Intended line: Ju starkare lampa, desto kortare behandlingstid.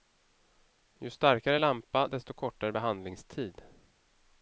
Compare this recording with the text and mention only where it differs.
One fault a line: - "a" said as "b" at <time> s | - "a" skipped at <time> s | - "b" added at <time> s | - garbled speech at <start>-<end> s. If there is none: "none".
none